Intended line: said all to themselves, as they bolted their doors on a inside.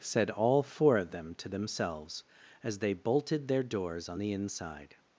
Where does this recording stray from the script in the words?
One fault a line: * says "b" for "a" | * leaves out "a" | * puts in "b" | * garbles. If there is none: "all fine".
* puts in "four of them"
* says "the" for "a"